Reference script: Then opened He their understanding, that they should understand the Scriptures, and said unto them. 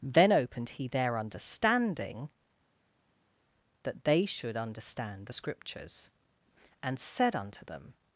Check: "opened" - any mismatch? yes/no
no